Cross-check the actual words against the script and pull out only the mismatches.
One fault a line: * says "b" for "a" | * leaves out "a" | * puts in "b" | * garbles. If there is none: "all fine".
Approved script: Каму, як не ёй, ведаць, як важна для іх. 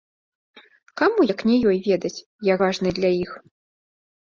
all fine